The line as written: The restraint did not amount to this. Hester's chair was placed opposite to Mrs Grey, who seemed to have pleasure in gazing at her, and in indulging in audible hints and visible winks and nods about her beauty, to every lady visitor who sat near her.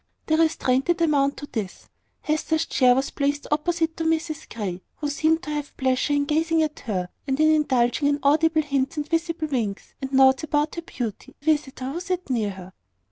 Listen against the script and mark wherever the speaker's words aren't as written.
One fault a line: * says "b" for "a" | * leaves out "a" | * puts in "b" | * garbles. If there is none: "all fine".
* leaves out "not"
* leaves out "to every lady"